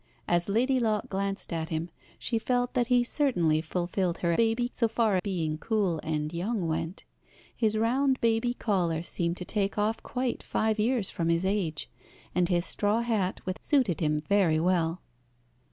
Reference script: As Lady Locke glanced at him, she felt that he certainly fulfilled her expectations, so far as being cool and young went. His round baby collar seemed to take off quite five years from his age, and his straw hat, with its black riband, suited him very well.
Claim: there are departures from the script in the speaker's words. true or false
true